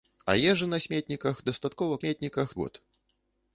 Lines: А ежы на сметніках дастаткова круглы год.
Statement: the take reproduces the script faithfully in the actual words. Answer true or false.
false